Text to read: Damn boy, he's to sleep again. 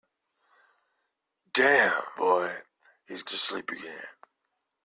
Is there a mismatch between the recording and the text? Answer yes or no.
no